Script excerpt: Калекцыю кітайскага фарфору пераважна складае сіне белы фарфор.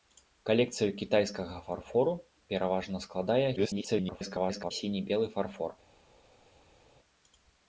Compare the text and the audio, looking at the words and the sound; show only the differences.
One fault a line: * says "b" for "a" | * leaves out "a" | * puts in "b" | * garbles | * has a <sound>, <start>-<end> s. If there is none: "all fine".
* garbles